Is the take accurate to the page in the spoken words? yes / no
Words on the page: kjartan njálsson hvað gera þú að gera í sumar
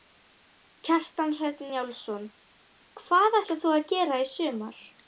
no